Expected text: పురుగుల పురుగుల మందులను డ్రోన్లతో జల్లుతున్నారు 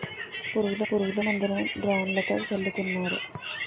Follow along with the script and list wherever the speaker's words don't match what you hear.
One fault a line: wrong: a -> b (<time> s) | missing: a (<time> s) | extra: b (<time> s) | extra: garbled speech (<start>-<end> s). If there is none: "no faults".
no faults